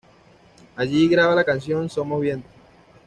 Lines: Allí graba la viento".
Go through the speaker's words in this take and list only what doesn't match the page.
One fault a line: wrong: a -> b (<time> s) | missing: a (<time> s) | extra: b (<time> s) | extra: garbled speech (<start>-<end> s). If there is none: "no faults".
extra: canción Somos (1.4 s)